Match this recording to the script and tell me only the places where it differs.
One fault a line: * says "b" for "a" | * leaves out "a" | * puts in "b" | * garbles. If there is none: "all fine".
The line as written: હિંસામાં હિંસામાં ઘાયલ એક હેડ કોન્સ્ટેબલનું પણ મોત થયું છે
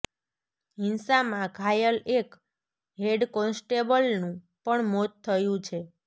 * leaves out "હિંસામાં"